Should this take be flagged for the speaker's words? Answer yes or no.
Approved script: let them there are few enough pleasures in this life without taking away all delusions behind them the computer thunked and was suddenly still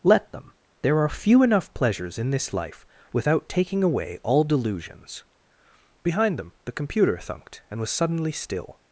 no